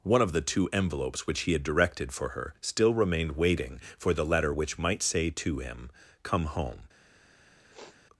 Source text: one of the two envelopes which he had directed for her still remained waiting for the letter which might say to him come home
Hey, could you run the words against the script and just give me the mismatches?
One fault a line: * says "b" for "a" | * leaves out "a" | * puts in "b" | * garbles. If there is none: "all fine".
all fine